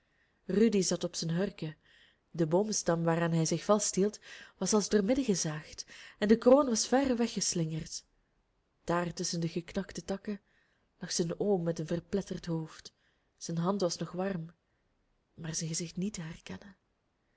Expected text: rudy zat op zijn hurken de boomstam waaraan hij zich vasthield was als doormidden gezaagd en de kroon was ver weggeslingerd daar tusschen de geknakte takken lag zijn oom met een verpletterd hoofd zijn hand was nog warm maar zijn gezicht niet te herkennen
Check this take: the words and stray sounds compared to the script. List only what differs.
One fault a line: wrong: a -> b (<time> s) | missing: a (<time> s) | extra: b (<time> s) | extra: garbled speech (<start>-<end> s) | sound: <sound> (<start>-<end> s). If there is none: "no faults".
no faults